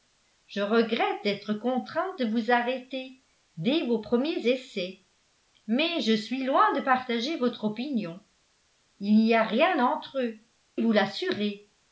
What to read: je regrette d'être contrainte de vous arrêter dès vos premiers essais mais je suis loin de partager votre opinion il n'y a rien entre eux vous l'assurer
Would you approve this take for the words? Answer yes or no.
yes